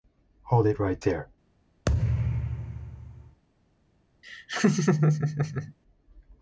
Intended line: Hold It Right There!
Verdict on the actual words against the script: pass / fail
pass